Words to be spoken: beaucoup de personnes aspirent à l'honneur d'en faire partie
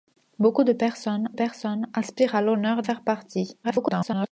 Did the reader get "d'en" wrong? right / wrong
wrong